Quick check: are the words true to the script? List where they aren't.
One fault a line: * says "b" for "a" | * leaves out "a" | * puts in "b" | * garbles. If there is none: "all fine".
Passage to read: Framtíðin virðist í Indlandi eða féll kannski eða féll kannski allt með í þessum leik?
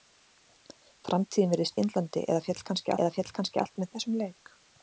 all fine